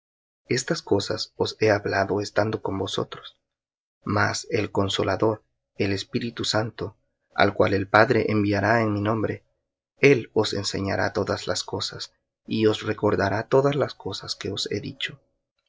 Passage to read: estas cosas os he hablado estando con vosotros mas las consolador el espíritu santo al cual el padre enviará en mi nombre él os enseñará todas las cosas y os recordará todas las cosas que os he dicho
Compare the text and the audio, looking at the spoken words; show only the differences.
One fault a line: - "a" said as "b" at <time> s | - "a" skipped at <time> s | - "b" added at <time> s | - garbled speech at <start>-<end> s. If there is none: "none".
- "las" said as "el" at 4.5 s